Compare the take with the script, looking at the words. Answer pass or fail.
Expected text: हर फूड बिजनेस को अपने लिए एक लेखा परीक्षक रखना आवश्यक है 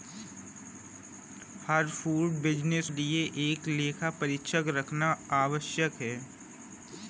fail